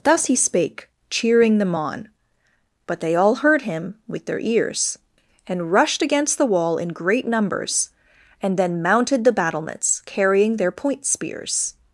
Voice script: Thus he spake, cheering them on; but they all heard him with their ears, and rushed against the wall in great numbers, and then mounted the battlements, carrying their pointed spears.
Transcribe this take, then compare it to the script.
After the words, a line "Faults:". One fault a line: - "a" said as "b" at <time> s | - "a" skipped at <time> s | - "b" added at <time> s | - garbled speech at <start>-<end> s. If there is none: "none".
Thus he spake, cheering them on; but they all heard him with their ears, and rushed against the wall in great numbers, and then mounted the battlements, carrying their point spears.
Faults:
- "pointed" said as "point" at 10.7 s